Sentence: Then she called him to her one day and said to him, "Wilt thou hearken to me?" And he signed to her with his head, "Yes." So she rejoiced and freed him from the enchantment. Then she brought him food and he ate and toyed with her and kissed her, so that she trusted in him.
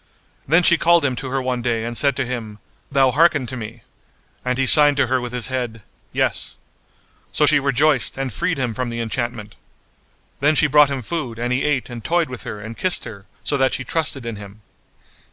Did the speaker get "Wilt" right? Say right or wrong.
wrong